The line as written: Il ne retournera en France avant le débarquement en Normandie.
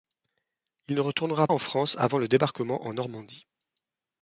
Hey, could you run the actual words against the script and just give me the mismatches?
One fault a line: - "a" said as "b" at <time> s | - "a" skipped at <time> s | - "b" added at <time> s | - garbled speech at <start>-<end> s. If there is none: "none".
none